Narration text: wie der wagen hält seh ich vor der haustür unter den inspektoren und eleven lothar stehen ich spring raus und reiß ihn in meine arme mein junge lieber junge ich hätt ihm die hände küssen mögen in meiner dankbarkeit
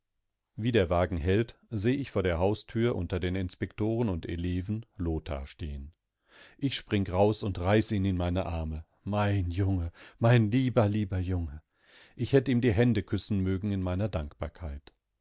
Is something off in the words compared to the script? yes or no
yes